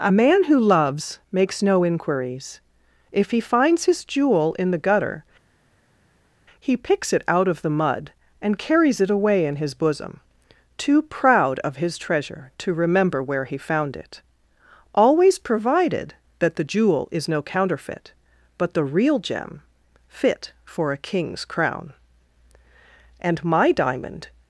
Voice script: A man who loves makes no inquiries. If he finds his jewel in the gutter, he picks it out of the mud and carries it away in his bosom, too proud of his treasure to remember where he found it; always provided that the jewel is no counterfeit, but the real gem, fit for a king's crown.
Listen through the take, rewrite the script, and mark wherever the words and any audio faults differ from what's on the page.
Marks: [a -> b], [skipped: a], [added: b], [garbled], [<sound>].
A man who loves makes no inquiries. If he finds his jewel in the gutter, he picks it out of the mud and carries it away in his bosom, too proud of his treasure to remember where he found it; always provided that the jewel is no counterfeit, but the real gem, fit for a king's crown. [added: And my diamond]